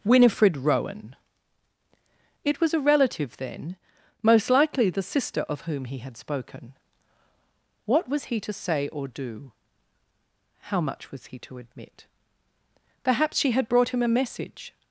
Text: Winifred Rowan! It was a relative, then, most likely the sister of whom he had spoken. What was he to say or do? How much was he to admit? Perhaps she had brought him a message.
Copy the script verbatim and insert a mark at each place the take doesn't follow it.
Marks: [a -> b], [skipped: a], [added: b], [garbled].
Winifred Rowan! It was a relative, then, most likely the sister of whom he had spoken. What was he to say or do? How much was he to admit? Perhaps she had brought him a message.